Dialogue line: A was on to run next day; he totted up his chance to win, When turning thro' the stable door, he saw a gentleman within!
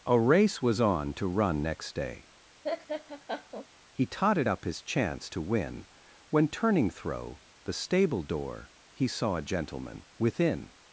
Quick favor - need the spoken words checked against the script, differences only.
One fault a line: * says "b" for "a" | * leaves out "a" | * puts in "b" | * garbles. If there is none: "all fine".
* puts in "race"